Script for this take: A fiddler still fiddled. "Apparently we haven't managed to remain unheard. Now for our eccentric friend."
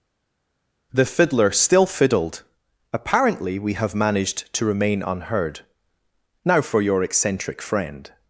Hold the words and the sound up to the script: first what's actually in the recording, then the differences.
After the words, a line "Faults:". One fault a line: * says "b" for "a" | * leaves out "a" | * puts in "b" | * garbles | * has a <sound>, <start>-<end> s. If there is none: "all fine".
The fiddler still fiddled. "Apparently we have managed to remain unheard. Now for your eccentric friend."
Faults:
* says "The" for "A"
* says "have" for "haven't"
* says "your" for "our"